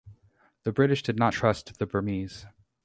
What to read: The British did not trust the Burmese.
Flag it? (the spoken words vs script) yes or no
no